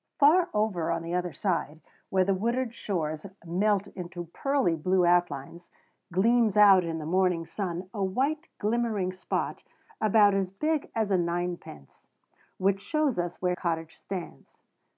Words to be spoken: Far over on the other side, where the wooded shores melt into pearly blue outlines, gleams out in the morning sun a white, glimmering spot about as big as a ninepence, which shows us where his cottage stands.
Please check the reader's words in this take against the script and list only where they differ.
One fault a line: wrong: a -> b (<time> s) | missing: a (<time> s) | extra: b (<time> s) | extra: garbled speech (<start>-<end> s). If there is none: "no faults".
missing: his (13.6 s)